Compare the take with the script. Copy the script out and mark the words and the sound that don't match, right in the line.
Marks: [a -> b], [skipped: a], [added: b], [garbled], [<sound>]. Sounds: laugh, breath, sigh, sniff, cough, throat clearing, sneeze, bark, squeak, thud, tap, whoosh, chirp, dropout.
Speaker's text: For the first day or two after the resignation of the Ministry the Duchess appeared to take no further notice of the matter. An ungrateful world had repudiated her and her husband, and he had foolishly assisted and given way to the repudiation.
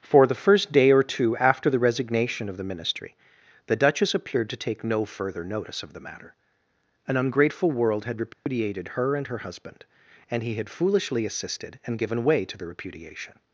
For the first day or two after the resignation of the Ministry the Duchess appeared to take no further notice of the matter. An ungrateful world had repudiated [dropout] her and her husband, and he had foolishly assisted and given way to the repudiation.